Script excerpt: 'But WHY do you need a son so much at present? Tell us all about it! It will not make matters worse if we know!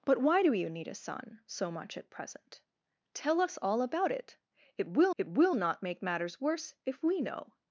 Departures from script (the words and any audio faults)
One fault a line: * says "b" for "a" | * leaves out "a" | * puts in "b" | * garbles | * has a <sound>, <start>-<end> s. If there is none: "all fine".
* puts in "it will"